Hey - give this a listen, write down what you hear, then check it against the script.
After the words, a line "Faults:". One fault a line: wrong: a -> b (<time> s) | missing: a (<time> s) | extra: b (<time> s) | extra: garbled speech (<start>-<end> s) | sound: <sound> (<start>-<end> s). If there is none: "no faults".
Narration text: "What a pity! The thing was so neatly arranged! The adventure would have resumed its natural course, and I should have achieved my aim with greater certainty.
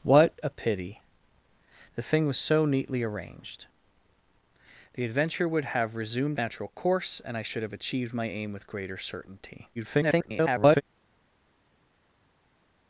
"What a pity! The thing was so neatly arranged! The adventure would have resumed natural course, and I should have achieved my aim with greater certainty. [garbled]
Faults:
missing: its (6.4 s)
extra: garbled speech (9.7-10.8 s)